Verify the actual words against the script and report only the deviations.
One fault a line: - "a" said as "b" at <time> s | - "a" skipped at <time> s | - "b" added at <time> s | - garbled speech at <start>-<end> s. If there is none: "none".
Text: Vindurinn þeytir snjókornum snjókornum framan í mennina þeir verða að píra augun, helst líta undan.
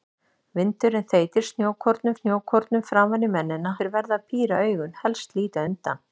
none